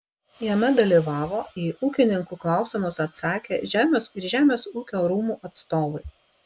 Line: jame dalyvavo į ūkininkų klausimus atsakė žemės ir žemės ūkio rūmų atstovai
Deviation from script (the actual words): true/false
false